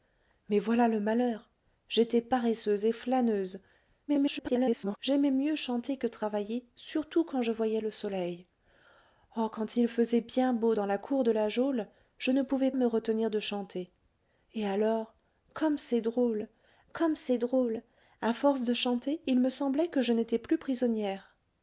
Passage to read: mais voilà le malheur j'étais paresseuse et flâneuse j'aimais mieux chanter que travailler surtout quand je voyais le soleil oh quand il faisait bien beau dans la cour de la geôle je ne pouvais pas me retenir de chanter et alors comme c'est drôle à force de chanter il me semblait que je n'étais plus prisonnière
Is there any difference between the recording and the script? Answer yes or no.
yes